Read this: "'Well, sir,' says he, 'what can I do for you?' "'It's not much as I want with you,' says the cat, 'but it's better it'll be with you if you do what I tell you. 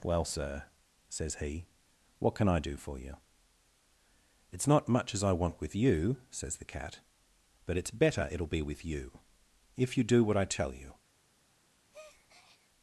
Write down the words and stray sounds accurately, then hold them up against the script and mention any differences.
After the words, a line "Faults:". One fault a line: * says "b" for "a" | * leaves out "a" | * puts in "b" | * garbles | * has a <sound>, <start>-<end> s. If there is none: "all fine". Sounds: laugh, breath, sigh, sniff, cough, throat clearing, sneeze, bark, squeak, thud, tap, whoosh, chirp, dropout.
"'Well, sir,' says he, 'what can I do for you?' "'It's not much as I want with you,' says the cat, 'but it's better it'll be with you if you do what I tell you.
Faults:
* has a breath, 11.9-12.7 s